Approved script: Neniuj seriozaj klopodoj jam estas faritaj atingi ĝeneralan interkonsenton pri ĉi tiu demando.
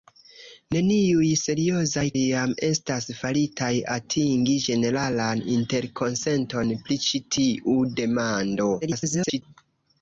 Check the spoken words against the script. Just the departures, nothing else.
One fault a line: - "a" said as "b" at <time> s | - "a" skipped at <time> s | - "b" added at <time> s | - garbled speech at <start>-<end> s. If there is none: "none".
- "klopodoj" skipped at 2.0 s
- garbled speech at 8.8-9.4 s